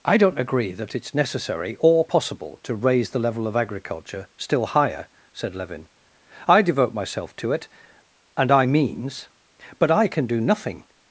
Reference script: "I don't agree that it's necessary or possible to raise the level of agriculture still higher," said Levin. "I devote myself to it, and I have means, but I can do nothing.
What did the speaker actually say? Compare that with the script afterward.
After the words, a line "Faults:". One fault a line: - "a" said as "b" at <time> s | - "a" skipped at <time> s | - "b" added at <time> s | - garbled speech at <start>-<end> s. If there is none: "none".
"I don't agree that it's necessary or possible to raise the level of agriculture still higher," said Levin. "I devote myself to it, and I means, but I can do nothing.
Faults:
- "have" skipped at 8.7 s